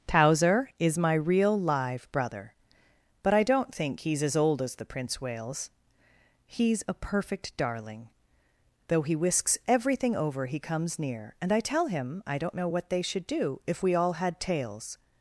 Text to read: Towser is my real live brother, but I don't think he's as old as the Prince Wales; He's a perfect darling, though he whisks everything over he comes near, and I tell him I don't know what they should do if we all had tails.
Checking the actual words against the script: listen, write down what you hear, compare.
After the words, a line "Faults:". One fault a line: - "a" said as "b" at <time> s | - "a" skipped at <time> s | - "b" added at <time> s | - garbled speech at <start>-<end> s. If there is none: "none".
Towser is my real live brother, but I don't think he's as old as the Prince Wales; He's a perfect darling, though he whisks everything over he comes near, and I tell him I don't know what they should do if we all had tails.
Faults:
none